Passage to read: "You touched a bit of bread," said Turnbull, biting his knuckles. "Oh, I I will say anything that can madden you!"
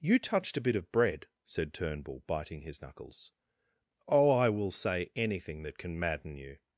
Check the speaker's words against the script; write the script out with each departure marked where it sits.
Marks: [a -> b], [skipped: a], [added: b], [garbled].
"You touched a bit of bread," said Turnbull, biting his knuckles. "Oh, I [skipped: I] will say anything that can madden you!"